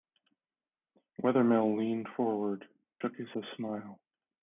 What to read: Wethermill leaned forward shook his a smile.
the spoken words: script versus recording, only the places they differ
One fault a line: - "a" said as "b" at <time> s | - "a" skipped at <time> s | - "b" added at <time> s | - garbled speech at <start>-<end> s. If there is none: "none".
none